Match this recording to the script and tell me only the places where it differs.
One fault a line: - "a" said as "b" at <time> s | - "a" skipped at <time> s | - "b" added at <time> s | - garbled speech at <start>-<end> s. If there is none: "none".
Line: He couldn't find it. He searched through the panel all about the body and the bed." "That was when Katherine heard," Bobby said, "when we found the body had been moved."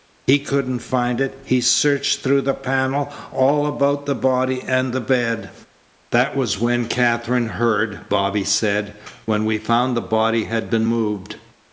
none